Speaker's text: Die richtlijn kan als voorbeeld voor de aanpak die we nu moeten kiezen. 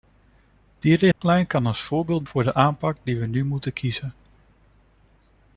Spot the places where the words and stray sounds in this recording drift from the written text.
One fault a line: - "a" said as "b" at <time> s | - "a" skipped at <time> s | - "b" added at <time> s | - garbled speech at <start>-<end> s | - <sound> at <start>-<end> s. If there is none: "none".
- dropout at 1.1-1.2 s